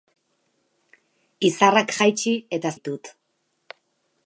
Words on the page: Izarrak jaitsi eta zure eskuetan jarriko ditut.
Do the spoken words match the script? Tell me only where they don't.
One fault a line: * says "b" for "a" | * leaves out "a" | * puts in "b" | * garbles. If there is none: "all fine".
* leaves out "zure eskuetan jarriko"